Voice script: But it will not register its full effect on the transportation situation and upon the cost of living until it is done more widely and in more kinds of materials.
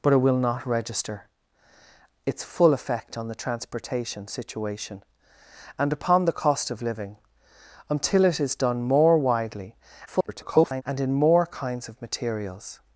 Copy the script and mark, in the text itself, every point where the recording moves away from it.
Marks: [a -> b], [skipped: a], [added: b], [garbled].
But it will not register its full effect on the transportation situation and upon the cost of living until it is done more widely [garbled] and in more kinds of materials.